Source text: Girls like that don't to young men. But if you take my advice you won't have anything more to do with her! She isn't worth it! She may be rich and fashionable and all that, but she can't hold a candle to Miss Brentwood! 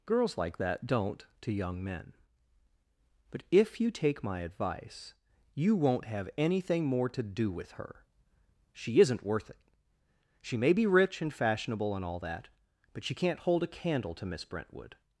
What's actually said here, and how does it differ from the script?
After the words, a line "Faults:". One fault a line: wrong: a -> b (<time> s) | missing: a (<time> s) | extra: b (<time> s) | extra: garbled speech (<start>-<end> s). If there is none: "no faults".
Girls like that don't to young men. But if you take my advice you won't have anything more to do with her! She isn't worth it! She may be rich and fashionable and all that, but she can't hold a candle to Miss Brentwood!
Faults:
no faults